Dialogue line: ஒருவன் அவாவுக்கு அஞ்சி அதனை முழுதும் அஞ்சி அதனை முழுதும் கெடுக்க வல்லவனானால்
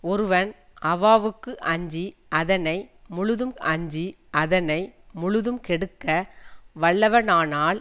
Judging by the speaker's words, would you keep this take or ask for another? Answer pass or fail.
pass